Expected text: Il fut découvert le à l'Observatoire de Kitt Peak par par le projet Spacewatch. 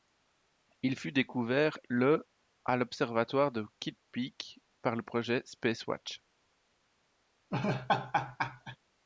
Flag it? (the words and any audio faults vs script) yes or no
yes